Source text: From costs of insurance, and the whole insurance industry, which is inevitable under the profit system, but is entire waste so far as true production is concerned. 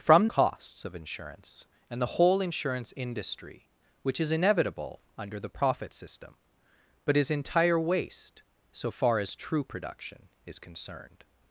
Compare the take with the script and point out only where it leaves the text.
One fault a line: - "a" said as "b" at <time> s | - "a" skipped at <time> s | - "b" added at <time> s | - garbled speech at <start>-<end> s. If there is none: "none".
none